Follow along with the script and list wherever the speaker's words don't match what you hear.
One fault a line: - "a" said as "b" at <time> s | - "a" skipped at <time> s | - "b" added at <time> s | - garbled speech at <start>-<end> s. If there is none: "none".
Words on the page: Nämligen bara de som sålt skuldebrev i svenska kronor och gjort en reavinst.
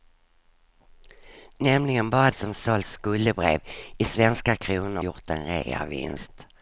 - "de" skipped at 2.3 s
- "och" skipped at 5.0 s